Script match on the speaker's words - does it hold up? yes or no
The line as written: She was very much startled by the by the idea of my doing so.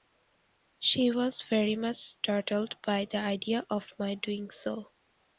no